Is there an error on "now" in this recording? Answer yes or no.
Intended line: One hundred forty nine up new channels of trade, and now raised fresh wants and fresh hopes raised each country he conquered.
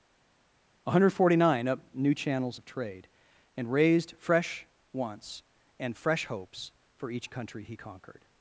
yes